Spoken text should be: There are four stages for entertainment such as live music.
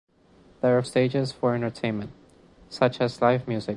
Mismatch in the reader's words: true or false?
true